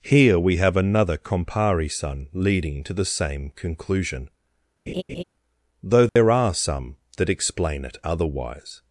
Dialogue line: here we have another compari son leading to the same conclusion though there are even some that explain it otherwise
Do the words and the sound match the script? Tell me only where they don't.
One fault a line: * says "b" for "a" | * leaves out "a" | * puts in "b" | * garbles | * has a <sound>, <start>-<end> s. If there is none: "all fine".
* has a laugh, 4.9-5.2 s
* has a dropout, 6.1-6.2 s
* leaves out "even"